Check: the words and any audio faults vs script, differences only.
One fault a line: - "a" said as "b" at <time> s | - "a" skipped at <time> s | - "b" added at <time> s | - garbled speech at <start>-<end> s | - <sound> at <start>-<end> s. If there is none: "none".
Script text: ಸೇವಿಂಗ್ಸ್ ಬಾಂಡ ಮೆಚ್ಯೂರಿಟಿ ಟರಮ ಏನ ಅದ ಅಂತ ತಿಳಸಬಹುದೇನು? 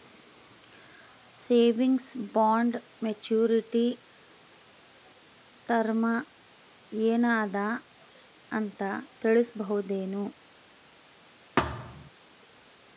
- thud at 11.6-12.1 s